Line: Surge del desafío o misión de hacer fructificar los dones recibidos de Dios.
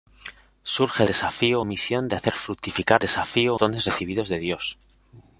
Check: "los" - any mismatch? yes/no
yes